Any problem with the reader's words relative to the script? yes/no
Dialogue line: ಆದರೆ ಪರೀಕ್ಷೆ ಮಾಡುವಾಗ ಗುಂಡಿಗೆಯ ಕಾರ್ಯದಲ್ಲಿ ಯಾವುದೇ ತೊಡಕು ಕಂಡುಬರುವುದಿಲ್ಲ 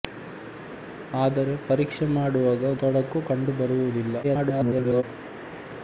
yes